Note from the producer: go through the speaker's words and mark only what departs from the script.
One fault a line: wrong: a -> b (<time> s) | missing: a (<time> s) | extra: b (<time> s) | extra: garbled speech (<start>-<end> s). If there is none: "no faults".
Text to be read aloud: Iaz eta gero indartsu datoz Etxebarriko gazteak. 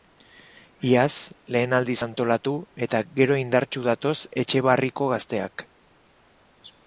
extra: lehen aldiz antolatu (1.6 s)